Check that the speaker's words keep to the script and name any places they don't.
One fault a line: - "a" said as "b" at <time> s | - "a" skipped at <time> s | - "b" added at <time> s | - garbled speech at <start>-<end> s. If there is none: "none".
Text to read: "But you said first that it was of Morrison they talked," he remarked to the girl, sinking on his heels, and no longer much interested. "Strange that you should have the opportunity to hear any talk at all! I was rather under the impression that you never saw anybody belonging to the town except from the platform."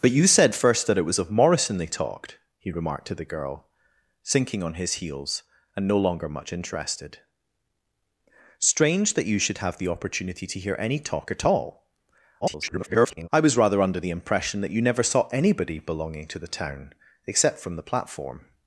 - garbled speech at 12.4-13.3 s